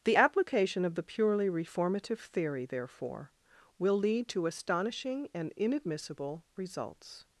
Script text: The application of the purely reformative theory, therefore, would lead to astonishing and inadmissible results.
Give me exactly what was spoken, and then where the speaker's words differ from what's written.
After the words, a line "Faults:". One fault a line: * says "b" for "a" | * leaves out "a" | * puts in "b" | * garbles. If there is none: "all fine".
The application of the purely reformative theory, therefore, will lead to astonishing and inadmissible results.
Faults:
* says "will" for "would"